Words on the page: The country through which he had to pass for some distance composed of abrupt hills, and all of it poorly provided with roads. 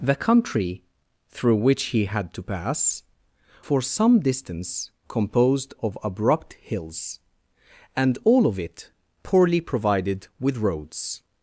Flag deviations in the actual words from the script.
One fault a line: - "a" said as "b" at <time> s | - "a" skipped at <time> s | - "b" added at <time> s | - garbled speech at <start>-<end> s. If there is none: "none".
none